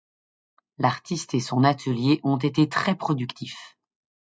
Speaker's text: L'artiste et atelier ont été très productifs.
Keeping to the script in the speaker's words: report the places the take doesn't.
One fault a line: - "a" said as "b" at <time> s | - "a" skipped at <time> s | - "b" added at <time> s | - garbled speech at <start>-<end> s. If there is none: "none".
- "son" added at 1.4 s